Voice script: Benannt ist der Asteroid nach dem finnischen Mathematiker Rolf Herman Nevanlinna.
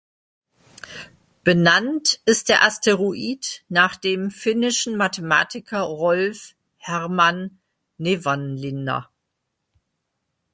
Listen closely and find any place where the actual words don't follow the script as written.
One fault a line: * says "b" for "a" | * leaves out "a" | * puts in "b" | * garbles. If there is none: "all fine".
all fine